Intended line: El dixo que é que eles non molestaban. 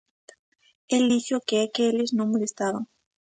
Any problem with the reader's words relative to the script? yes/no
no